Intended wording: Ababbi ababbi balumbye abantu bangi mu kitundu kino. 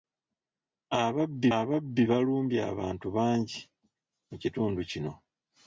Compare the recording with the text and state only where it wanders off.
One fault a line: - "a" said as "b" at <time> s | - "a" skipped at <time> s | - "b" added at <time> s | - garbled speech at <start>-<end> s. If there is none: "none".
none